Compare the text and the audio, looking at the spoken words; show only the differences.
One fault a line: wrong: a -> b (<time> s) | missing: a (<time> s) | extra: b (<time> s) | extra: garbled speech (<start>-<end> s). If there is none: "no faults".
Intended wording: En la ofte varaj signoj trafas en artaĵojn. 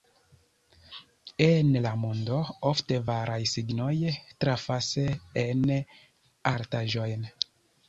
extra: mondo (2.0 s)